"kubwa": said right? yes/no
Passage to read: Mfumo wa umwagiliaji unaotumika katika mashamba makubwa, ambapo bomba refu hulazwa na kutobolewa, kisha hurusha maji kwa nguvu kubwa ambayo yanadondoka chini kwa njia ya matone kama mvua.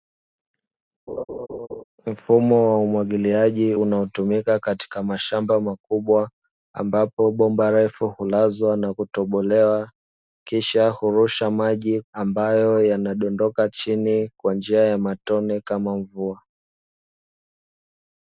no